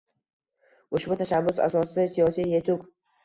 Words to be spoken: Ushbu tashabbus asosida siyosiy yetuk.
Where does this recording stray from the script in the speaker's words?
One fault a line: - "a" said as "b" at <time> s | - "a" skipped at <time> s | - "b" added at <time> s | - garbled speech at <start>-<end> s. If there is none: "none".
none